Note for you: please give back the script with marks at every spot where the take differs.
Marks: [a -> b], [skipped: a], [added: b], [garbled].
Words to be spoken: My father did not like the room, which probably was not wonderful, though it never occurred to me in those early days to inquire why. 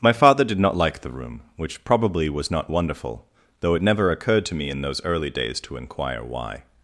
My father did not like the room, which probably was not wonderful, though it never occurred to me in those early days to inquire why.